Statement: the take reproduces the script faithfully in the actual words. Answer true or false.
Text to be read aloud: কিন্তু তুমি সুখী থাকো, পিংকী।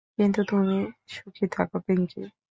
true